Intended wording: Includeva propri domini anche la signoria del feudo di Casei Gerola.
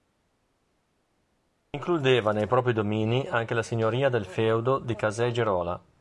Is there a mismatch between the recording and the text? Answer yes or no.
yes